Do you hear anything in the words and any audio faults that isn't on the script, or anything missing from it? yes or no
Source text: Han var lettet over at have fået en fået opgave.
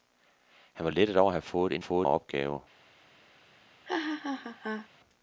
yes